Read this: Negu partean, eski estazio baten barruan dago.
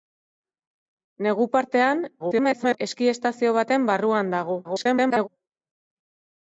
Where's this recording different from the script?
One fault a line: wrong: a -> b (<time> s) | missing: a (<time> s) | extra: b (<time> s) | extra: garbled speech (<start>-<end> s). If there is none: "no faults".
extra: garbled speech (2.2-2.8 s)
extra: garbled speech (4.6-5.3 s)